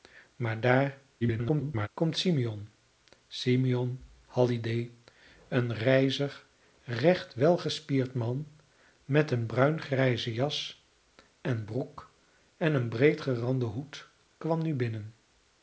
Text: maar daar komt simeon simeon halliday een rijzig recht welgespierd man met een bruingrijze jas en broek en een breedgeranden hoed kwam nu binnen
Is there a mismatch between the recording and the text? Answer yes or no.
yes